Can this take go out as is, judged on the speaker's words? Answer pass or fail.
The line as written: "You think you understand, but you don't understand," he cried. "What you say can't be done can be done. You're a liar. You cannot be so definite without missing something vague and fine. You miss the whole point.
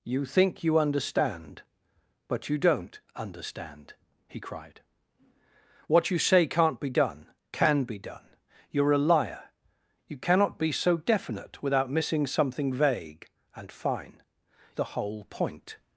fail